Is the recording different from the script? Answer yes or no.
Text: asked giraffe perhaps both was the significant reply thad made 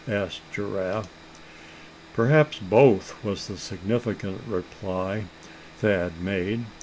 no